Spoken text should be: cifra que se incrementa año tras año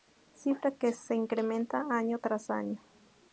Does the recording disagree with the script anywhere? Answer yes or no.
no